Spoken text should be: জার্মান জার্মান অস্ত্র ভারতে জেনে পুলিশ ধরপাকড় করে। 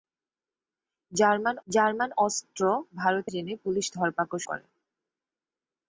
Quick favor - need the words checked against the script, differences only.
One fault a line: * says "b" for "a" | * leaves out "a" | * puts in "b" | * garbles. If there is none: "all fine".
all fine